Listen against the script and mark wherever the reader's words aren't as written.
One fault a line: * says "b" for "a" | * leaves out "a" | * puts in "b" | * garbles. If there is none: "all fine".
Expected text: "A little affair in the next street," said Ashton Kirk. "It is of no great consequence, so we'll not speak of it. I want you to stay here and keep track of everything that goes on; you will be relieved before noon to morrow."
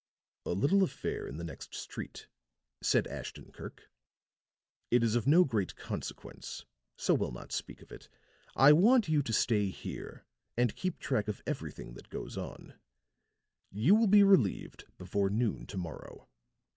all fine